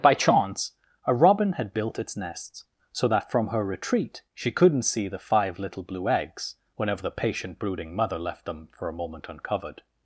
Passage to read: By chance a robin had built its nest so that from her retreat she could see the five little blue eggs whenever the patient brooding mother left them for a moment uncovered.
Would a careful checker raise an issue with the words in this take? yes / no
yes